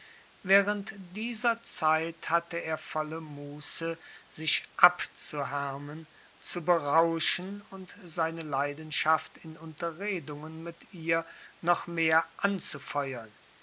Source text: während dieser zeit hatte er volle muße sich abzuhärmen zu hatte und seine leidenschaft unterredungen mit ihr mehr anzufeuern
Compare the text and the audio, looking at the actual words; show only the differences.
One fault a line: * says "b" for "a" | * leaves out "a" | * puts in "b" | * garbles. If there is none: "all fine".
* says "berauschen" for "hatte"
* puts in "in"
* puts in "noch"